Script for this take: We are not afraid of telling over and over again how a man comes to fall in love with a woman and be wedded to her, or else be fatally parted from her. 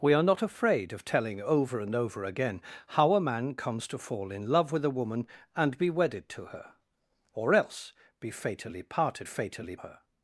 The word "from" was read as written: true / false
false